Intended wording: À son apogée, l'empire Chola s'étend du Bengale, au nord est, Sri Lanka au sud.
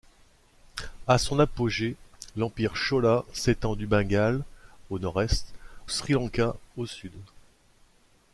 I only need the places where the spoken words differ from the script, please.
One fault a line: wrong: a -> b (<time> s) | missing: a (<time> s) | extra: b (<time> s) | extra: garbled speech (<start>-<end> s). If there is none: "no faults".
no faults